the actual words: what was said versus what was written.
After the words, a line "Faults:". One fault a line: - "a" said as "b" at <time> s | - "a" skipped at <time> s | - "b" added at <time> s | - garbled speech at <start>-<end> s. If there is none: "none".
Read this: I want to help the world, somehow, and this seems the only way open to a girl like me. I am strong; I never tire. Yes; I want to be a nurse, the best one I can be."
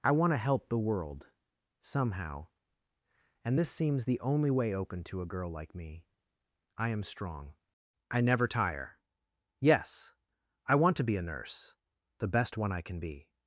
I want to help the world, somehow, and this seems the only way open to a girl like me. I am strong; I never tire. Yes; I want to be a nurse, the best one I can be."
Faults:
none